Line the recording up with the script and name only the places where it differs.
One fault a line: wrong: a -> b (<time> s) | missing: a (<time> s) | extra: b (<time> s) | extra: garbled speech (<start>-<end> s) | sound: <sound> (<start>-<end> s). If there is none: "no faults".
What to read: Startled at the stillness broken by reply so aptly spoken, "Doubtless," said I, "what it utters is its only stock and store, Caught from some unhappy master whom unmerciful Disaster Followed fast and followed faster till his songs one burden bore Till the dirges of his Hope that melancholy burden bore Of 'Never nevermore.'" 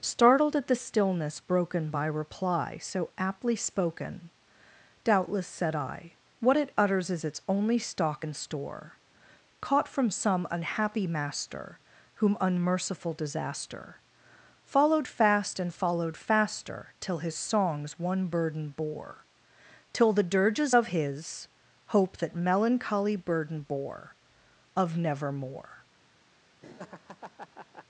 missing: Never (25.0 s)
sound: laugh (26.6-27.9 s)